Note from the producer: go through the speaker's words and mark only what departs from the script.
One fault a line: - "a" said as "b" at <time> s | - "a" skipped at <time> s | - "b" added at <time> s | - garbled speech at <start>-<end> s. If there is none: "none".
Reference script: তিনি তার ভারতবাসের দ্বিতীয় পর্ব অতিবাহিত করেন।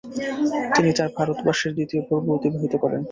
none